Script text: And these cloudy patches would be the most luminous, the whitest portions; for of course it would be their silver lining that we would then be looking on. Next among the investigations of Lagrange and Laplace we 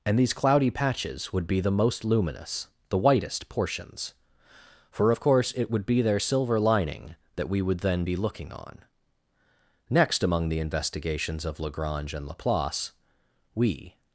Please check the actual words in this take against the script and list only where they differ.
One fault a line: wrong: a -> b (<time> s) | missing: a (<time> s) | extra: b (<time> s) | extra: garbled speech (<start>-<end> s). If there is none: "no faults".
no faults